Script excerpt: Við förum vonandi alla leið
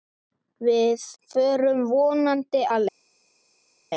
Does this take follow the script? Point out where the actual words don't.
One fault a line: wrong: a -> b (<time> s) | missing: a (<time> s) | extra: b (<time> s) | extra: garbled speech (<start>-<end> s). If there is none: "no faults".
missing: alla (2.6 s)